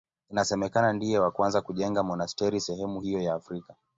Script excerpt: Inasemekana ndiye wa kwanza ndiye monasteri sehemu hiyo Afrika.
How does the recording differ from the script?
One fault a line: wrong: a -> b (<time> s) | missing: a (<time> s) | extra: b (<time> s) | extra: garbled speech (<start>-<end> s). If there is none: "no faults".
wrong: ndiye -> kujenga (1.6 s)
extra: ya (3.2 s)